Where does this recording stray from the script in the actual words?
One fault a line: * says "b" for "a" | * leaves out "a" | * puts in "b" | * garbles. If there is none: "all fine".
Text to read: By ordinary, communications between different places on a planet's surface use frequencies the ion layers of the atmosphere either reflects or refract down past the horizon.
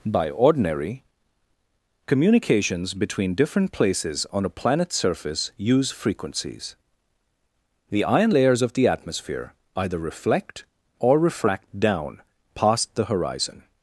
* says "reflect" for "reflects"